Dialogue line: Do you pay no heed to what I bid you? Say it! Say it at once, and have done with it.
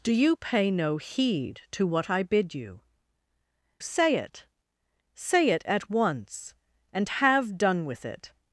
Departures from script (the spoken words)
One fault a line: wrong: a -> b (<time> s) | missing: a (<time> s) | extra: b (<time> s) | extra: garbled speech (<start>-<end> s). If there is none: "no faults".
no faults